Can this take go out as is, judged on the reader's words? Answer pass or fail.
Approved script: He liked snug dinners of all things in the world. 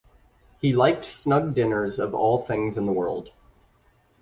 pass